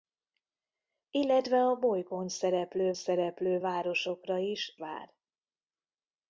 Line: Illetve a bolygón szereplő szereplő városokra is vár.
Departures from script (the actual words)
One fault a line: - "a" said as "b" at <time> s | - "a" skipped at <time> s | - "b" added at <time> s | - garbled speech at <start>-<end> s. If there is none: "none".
none